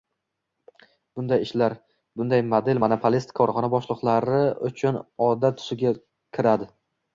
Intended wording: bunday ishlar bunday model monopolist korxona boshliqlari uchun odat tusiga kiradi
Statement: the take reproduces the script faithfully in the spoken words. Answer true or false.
true